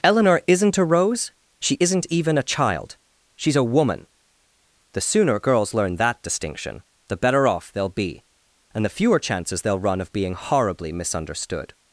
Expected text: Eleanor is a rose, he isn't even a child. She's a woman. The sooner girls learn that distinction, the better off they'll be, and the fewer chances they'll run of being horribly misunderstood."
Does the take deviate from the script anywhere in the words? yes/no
yes